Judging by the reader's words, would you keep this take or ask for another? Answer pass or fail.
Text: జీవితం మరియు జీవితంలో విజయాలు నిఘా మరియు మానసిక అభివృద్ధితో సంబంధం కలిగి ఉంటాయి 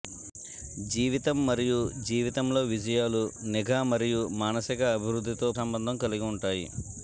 pass